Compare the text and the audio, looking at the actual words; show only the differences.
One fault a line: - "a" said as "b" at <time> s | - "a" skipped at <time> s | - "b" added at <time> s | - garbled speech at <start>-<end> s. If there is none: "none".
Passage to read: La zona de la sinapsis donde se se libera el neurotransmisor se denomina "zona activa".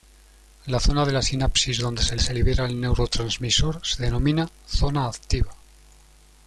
none